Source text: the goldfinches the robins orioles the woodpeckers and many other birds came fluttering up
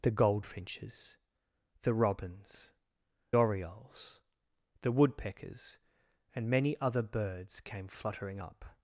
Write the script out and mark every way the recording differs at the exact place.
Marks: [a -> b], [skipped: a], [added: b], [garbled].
the goldfinches the robins orioles the woodpeckers and many other birds came fluttering up